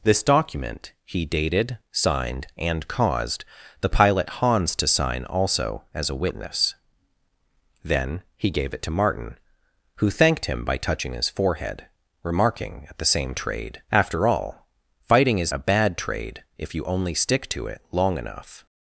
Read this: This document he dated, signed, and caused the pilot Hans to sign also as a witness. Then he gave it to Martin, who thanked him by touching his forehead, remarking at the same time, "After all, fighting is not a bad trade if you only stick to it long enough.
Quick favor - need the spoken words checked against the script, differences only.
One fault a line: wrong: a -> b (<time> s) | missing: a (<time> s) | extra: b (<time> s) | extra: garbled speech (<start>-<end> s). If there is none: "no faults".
wrong: time -> trade (13.4 s)
missing: not (15.5 s)